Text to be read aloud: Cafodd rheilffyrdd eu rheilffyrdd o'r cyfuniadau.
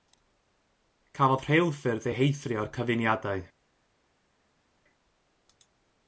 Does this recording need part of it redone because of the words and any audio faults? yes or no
yes